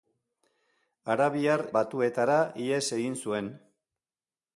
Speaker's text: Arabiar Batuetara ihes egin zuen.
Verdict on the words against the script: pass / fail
pass